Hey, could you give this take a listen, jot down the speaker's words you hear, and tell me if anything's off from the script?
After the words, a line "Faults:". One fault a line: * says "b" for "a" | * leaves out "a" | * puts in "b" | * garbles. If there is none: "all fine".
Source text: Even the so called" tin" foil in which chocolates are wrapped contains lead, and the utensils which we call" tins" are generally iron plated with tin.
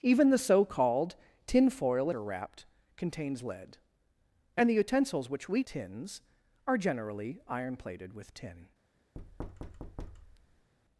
Even the so called" tin" foil are wrapped contains lead, and the utensils which we" tins" are generally iron plated with tin.
Faults:
* leaves out "in which chocolates"
* leaves out "call"